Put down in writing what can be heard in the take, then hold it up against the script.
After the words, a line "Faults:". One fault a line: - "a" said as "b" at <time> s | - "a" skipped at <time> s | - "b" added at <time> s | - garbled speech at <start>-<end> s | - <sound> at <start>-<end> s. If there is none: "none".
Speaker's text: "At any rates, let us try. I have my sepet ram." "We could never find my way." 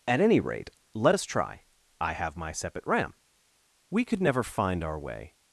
"At any rate, let us try. I have my sepet ram." "We could never find our way."
Faults:
- "rates" said as "rate" at 0.4 s
- "my" said as "our" at 4.8 s